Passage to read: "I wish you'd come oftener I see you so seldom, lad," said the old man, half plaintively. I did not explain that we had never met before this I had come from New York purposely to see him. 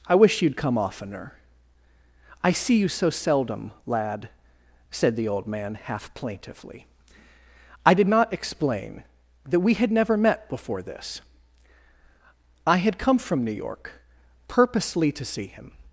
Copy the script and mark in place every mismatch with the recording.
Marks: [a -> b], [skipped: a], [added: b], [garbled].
"I wish you'd come oftener I see you so seldom, lad," said the old man, half plaintively. I did not explain that we had never met before this I had come from New York purposely to see him.